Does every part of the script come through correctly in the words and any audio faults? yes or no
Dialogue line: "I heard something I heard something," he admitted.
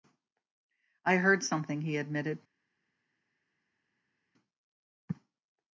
no